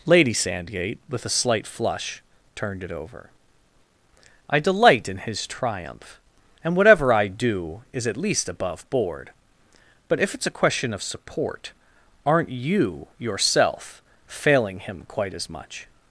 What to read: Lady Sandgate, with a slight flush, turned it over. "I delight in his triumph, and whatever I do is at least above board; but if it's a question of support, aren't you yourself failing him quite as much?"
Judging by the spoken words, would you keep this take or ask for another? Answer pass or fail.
pass